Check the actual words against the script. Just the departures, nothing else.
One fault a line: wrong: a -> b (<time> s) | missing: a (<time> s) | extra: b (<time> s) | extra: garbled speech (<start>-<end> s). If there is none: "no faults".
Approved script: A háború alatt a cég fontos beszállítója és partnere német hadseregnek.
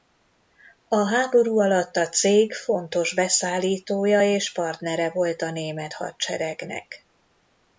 extra: volt a (5.1 s)